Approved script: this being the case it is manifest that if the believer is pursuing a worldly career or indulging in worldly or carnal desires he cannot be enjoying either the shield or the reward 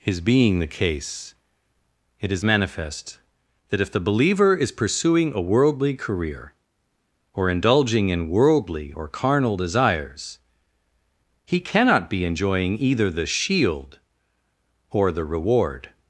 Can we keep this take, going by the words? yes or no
no